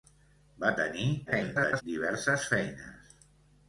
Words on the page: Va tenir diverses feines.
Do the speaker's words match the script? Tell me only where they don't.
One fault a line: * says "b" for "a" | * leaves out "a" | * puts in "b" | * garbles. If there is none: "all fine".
* garbles